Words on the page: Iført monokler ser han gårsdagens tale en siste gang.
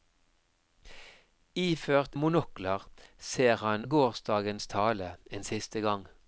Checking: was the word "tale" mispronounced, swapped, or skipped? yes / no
no